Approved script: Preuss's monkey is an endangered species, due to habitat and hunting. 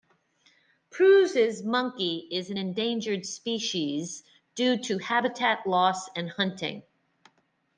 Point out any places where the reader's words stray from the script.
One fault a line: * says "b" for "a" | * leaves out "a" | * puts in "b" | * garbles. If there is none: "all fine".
* puts in "loss"